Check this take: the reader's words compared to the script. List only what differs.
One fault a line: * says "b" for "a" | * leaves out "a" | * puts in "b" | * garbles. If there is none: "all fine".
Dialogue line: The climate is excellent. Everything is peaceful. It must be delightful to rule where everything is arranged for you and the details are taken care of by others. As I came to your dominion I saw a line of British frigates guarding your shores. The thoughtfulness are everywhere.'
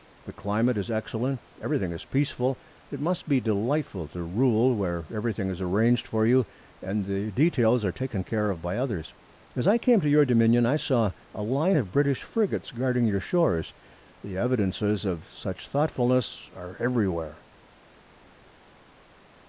* puts in "evidences of such"